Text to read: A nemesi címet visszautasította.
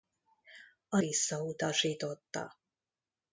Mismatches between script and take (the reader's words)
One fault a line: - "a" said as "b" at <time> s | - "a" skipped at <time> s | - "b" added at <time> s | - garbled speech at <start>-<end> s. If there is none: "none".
- "nemesi címet" skipped at 1.0 s